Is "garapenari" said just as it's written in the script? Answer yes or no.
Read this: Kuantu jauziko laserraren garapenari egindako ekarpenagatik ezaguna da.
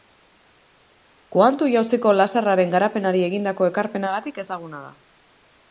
yes